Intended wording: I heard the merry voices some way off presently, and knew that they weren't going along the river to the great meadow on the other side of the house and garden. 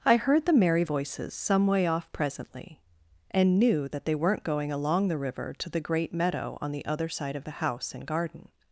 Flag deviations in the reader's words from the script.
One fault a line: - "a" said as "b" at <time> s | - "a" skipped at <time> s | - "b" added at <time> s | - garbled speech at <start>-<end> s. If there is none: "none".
none